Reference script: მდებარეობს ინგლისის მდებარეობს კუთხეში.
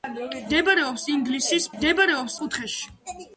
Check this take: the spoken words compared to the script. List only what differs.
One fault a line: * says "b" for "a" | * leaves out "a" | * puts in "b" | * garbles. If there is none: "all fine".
all fine